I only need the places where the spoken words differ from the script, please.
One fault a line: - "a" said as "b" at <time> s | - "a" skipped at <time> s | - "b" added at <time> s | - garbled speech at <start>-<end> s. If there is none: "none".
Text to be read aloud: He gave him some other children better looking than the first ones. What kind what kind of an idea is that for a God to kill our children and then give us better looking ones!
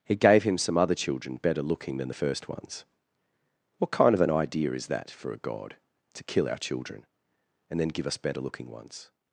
- "what kind" skipped at 4.1 s